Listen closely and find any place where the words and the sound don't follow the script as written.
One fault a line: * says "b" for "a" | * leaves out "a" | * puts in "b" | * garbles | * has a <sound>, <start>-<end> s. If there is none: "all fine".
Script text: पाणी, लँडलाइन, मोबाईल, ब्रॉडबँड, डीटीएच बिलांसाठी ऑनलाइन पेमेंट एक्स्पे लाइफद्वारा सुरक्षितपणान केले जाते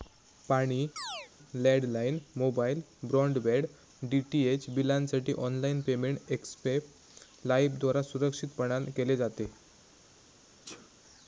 * has a chirp, 1.0-1.3 s
* has a sneeze, 10.7-10.9 s